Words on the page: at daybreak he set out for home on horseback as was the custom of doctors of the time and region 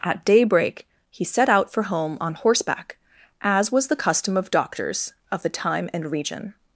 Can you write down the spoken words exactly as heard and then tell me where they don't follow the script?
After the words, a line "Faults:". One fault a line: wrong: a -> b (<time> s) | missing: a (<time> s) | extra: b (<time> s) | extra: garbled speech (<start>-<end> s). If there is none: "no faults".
at daybreak he set out for home on horseback as was the custom of doctors of the time and region
Faults:
no faults